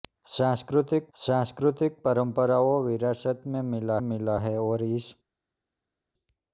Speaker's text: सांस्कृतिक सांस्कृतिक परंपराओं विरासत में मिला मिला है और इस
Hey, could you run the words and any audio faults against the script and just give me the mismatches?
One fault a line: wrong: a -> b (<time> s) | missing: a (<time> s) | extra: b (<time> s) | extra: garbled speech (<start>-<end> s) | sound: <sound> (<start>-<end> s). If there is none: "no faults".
no faults